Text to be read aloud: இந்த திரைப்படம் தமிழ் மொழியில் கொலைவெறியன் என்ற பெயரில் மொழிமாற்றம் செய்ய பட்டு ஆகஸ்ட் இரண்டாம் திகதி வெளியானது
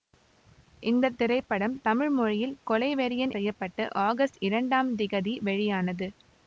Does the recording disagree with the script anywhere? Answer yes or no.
yes